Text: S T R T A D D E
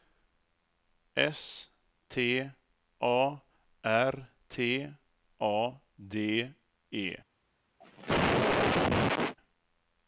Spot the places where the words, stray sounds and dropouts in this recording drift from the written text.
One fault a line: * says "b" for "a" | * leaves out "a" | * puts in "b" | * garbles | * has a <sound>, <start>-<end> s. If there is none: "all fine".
* puts in "A"
* leaves out "D"
* has a cough, 7.8-9.4 s